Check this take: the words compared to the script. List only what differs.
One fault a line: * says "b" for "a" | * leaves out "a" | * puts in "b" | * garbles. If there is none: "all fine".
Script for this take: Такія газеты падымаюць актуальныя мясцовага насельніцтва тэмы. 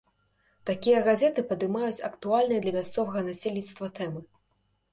* puts in "для"